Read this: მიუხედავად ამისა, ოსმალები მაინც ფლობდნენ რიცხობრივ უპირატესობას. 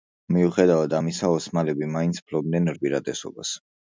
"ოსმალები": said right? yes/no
yes